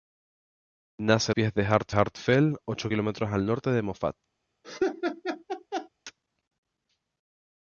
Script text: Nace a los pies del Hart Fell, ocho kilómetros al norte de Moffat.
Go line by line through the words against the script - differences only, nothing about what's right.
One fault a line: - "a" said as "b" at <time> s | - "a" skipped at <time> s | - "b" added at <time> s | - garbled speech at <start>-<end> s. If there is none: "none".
- "los" skipped at 1.4 s
- "Hart" added at 1.9 s